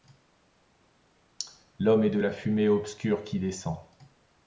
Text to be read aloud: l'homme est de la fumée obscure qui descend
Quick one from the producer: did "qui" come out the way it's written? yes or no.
yes